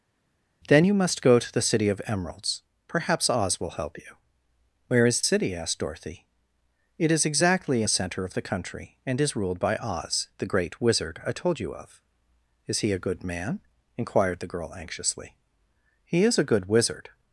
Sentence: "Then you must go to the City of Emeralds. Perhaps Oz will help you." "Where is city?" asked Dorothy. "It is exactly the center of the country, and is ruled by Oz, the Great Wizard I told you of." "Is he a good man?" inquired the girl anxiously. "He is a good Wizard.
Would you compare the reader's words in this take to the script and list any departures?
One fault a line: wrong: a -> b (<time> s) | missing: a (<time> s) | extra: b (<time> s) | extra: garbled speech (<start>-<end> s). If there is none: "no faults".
no faults